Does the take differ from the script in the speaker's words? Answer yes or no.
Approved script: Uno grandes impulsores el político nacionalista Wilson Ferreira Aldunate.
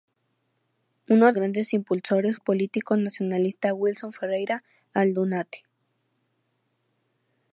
no